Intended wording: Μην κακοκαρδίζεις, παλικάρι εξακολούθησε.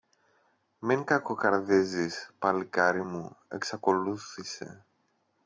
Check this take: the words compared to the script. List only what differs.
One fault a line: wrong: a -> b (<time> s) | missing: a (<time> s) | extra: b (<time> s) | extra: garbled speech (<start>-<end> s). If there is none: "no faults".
extra: μου (3.0 s)